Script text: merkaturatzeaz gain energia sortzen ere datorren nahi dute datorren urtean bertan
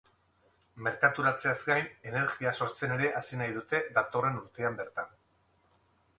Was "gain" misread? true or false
false